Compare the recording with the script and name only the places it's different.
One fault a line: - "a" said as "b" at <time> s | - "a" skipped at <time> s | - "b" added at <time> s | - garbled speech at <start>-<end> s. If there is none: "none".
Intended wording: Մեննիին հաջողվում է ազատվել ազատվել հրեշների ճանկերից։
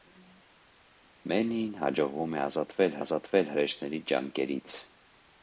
none